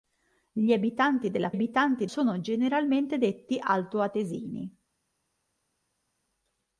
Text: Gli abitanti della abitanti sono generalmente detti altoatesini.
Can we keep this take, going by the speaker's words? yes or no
yes